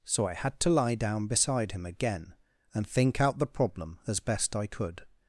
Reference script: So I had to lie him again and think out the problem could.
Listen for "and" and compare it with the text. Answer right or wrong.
right